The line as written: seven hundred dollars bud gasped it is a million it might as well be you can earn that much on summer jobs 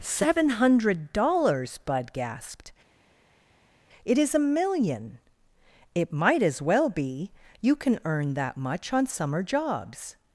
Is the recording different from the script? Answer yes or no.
no